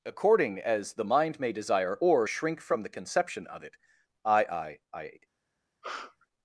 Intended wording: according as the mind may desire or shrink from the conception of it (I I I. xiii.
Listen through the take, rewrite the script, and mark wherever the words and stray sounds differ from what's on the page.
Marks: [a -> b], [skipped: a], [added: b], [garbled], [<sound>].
according as the mind may desire or shrink from the conception of it (I I I. [skipped: xiii.] [sneeze]